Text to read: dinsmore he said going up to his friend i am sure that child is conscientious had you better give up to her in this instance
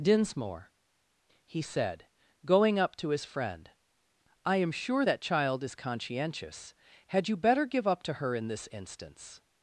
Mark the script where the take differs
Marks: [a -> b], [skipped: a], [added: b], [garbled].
dinsmore he said going up to his friend i am sure that child is conscientious had you better give up to her in this instance